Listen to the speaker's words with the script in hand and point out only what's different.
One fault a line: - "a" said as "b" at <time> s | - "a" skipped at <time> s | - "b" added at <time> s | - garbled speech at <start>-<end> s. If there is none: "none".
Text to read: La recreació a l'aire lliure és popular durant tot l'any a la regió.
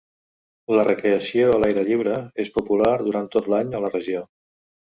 none